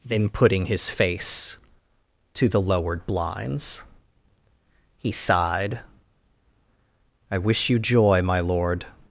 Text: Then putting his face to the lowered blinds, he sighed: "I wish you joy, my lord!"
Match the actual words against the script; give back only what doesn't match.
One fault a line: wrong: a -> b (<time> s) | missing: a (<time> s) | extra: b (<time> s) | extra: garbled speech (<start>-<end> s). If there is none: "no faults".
no faults